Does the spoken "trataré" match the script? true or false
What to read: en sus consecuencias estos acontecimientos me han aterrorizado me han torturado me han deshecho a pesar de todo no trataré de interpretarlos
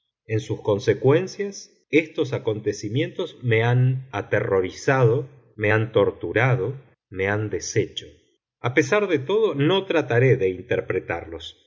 true